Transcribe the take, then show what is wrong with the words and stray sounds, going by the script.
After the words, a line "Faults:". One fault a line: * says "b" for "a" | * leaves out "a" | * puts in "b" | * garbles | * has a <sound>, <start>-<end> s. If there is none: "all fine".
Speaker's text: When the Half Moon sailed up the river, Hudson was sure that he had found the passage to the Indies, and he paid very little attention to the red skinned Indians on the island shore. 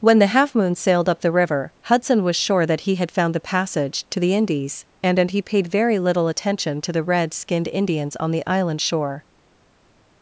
When the Half Moon sailed up the river, Hudson was sure that he had found the passage to the Indies, and and he paid very little attention to the red skinned Indians on the island shore.
Faults:
* puts in "and"